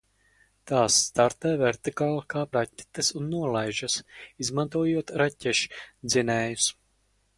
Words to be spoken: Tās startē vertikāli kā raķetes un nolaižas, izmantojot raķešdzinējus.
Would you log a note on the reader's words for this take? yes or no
no